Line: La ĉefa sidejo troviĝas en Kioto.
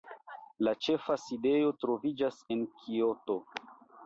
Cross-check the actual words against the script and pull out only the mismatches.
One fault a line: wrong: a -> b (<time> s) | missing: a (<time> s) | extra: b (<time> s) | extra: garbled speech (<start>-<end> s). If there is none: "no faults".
no faults